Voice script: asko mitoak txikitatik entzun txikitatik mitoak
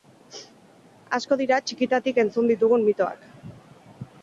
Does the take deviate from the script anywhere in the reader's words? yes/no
yes